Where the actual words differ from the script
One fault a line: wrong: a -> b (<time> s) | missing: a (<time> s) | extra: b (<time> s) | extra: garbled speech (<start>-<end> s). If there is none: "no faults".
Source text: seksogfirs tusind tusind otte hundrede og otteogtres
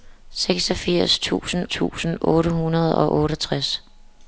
no faults